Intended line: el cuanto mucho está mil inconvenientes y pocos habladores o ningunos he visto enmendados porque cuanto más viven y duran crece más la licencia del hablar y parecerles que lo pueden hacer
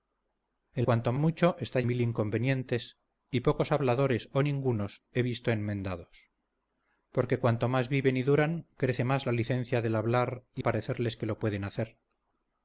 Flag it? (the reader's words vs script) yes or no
no